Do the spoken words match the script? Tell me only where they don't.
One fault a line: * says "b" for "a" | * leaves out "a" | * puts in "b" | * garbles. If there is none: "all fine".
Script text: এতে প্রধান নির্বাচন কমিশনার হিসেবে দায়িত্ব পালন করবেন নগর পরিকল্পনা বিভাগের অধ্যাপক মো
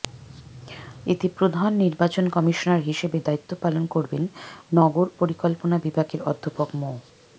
all fine